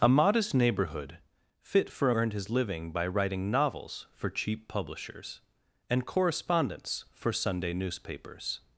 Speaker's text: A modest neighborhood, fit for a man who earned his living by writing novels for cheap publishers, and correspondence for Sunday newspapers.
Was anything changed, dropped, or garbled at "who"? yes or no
yes